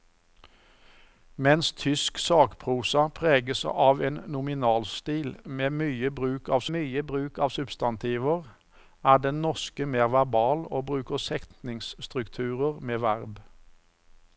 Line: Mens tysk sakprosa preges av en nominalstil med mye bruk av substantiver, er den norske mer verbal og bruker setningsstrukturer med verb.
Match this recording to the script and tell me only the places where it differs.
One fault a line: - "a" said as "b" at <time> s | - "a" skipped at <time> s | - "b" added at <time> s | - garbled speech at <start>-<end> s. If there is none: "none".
- "mye bruk av" added at 6.8 s